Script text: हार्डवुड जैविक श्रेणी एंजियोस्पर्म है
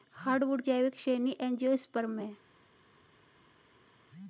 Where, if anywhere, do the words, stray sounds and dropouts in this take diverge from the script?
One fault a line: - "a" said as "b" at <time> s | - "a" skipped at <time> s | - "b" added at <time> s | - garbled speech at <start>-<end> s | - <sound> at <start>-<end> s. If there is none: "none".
none